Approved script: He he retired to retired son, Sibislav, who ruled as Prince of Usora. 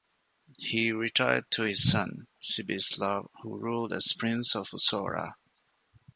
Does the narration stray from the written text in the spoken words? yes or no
yes